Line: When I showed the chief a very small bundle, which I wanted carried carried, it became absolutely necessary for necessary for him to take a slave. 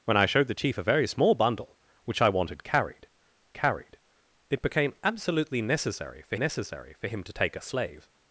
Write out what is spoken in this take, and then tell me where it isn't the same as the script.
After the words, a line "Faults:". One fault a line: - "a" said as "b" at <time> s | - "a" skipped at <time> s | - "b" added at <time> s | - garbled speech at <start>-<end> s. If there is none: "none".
When I showed the chief a very small bundle, which I wanted carried carried, it became absolutely necessary for necessary for him to take a slave.
Faults:
none